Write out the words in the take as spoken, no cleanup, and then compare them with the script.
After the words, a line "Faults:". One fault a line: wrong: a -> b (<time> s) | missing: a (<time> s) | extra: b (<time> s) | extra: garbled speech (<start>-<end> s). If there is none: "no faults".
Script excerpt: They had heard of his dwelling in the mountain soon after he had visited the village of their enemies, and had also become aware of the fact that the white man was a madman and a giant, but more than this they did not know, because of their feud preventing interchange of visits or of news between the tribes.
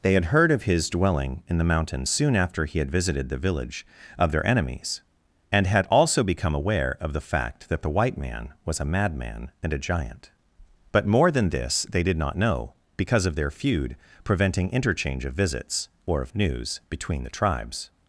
They had heard of his dwelling in the mountain soon after he had visited the village of their enemies, and had also become aware of the fact that the white man was a madman and a giant, but more than this they did not know, because of their feud preventing interchange of visits or of news between the tribes.
Faults:
no faults